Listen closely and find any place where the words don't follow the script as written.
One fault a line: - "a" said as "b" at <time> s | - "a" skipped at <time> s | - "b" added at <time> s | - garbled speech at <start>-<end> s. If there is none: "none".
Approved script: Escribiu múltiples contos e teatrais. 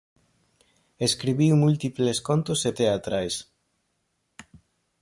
none